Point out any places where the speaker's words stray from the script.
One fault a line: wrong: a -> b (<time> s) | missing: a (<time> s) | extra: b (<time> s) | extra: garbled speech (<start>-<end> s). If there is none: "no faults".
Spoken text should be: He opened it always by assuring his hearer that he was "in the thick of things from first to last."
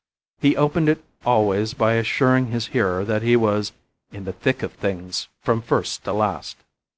no faults